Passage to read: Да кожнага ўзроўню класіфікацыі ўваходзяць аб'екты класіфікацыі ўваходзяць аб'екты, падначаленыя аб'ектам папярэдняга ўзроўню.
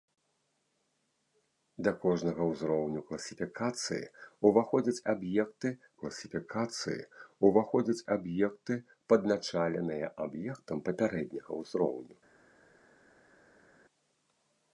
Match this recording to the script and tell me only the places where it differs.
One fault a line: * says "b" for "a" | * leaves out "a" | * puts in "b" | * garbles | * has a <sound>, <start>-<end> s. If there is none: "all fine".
all fine